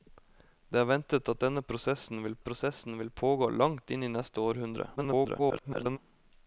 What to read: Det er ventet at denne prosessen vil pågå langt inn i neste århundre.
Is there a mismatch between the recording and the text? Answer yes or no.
yes